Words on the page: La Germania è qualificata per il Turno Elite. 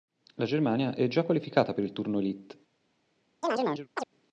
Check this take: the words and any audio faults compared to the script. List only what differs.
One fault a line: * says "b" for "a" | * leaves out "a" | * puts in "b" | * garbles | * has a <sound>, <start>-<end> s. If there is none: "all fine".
* puts in "già"
* has a chirp, 3.4-4.1 s